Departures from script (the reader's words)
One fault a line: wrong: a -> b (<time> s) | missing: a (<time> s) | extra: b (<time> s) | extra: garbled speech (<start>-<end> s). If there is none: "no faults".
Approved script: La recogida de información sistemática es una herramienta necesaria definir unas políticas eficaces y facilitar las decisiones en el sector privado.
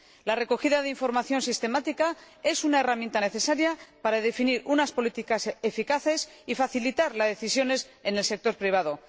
extra: para (4.0 s)